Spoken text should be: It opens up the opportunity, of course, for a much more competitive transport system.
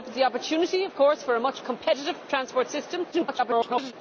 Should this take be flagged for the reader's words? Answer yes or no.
yes